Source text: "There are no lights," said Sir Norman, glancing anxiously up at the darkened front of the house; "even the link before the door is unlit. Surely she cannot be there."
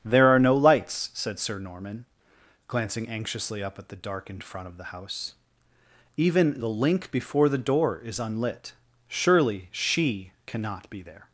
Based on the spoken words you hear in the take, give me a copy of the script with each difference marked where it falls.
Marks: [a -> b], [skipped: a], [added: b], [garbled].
"There are no lights," said Sir Norman, glancing anxiously up at the darkened front of the house; "even the link before the door is unlit. Surely she cannot be there."